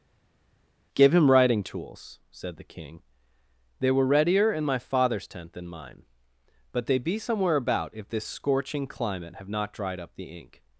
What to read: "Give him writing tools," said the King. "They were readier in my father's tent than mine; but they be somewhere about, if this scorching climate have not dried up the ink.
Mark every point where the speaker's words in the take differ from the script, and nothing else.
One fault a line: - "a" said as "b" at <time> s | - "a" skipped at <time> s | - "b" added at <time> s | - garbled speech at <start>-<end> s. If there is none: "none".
none